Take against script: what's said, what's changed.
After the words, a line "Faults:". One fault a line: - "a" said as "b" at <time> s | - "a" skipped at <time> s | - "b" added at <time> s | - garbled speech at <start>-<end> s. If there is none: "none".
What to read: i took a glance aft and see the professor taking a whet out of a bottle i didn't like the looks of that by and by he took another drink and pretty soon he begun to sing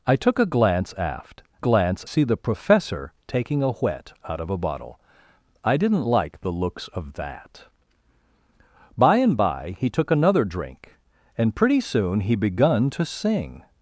i took a glance aft glance see the professor taking a whet out of a bottle i didn't like the looks of that by and by he took another drink and pretty soon he begun to sing
Faults:
- "and" said as "glance" at 1.6 s